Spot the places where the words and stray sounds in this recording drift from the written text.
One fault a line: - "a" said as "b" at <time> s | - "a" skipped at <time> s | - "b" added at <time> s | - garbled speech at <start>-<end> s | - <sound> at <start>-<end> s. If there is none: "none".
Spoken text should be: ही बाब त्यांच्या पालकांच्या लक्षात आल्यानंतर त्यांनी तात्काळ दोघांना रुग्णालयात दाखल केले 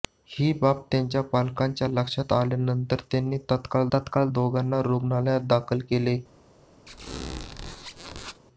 - "तात्काळ" added at 3.9 s
- squeak at 6.9-8.4 s